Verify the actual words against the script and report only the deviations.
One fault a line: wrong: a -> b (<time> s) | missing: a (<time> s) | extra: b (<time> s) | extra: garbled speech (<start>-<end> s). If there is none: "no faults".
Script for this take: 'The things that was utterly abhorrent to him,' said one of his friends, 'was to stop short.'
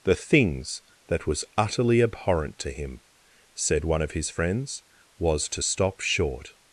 no faults